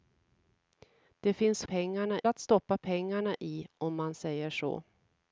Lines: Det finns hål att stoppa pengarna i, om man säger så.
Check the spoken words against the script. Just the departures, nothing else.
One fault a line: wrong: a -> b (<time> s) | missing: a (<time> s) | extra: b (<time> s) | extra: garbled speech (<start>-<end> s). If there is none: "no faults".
wrong: hål -> pengarna (1.6 s)